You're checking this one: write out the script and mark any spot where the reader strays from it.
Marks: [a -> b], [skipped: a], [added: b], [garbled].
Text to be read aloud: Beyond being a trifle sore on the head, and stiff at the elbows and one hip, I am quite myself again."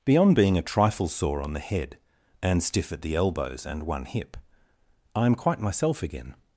Beyond being a trifle sore on the head, and stiff at the elbows and one hip, I am quite myself again."